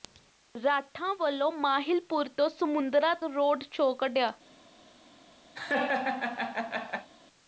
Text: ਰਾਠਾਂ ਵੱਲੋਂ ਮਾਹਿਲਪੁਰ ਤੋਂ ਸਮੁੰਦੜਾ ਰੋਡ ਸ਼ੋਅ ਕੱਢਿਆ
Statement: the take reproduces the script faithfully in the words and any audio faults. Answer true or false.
false